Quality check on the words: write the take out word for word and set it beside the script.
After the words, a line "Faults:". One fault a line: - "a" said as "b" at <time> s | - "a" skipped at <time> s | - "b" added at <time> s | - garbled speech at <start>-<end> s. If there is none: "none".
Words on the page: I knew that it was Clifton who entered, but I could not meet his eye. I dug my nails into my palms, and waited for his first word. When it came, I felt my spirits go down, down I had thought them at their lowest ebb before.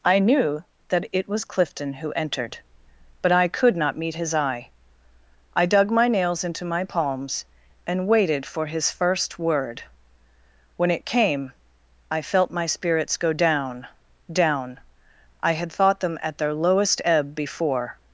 I knew that it was Clifton who entered, but I could not meet his eye. I dug my nails into my palms, and waited for his first word. When it came, I felt my spirits go down, down I had thought them at their lowest ebb before.
Faults:
none